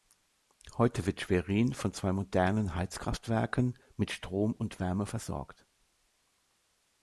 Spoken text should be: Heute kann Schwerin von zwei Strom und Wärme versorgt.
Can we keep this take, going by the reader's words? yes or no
no